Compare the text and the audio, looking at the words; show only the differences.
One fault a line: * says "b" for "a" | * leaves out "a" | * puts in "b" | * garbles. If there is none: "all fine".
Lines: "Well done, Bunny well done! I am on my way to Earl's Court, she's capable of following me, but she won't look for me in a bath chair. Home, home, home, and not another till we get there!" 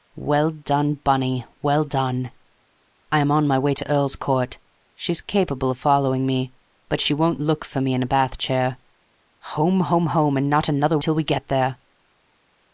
all fine